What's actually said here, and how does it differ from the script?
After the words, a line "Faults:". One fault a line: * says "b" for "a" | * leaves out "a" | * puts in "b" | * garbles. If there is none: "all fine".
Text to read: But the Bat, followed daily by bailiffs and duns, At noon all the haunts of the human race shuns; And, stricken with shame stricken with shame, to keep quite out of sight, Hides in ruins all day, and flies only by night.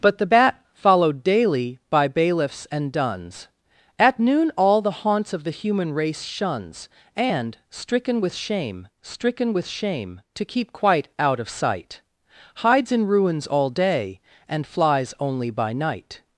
But the Bat, followed daily by bailiffs and duns, At noon all the haunts of the human race shuns; And, stricken with shame stricken with shame, to keep quite out of sight, Hides in ruins all day, and flies only by night.
Faults:
all fine